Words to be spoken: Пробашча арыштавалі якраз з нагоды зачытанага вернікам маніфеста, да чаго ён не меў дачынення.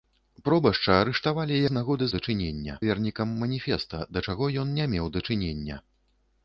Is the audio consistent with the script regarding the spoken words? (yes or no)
no